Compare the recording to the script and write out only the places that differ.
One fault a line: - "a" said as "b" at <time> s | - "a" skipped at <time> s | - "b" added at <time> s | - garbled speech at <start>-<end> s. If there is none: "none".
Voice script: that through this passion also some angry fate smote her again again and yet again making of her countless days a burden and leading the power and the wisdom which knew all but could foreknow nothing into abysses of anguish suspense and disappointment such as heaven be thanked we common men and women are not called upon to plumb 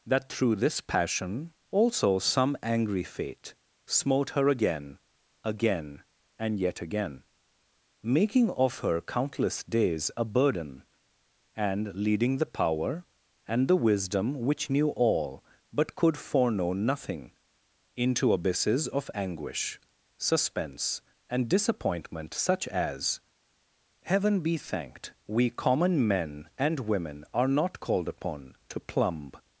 none